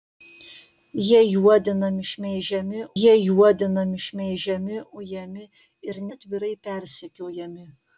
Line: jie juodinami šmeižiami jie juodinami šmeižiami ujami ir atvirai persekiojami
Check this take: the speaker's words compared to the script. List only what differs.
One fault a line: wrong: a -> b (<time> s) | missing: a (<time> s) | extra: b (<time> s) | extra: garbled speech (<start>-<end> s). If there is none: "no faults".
no faults